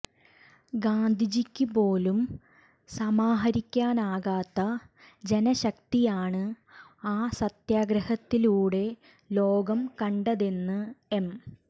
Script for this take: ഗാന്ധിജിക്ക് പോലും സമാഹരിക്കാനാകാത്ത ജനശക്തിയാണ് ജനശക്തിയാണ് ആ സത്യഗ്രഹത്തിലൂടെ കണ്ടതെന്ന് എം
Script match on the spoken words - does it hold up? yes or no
no